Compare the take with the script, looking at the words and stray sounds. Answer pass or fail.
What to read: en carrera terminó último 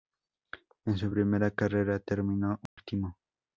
fail